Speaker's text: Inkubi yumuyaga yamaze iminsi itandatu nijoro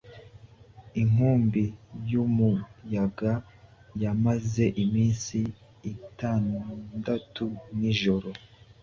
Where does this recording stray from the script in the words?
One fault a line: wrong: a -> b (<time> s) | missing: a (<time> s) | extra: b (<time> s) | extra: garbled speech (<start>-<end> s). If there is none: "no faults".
no faults